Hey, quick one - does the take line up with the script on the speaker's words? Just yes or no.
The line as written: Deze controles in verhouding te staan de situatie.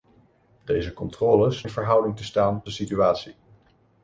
yes